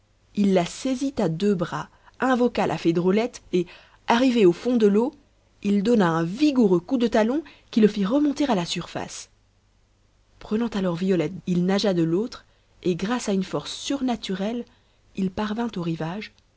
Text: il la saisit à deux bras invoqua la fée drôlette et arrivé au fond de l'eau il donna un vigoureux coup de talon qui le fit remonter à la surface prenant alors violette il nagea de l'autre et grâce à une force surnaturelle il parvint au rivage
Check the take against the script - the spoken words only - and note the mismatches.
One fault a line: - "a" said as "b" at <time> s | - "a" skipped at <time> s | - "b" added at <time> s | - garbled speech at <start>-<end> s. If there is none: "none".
none